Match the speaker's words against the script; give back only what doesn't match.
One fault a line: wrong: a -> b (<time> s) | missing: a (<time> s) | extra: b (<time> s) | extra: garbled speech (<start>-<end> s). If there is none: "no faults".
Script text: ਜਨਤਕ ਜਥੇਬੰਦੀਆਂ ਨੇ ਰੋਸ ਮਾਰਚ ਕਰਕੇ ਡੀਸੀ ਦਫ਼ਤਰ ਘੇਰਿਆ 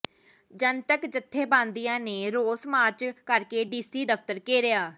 no faults